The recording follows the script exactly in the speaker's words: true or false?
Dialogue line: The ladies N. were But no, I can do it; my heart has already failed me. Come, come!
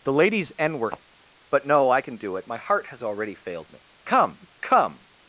true